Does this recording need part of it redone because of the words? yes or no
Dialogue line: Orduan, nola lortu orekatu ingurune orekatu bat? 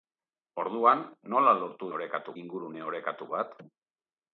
no